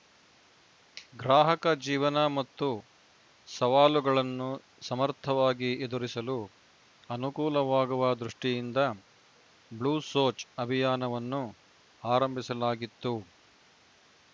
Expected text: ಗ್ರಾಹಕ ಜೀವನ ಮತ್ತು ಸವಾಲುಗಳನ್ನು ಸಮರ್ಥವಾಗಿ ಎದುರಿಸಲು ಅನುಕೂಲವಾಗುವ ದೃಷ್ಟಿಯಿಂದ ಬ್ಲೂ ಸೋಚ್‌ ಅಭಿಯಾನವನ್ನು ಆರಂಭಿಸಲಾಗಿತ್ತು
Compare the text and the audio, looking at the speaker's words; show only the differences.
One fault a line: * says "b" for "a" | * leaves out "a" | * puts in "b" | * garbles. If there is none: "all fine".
all fine